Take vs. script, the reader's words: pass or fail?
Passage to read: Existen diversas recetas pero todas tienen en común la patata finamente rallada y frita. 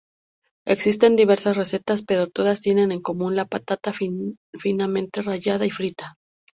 pass